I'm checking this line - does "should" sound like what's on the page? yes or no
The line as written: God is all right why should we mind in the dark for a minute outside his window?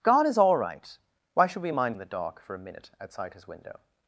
yes